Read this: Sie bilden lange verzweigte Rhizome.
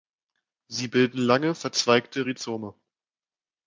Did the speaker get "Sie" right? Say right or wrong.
right